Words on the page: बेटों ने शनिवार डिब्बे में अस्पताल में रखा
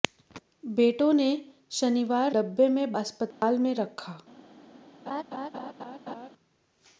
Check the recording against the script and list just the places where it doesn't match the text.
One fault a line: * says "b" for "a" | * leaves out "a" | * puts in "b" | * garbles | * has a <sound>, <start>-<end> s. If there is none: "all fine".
* has a dropout, 3.3-3.4 s
* has a laugh, 5.1-6.3 s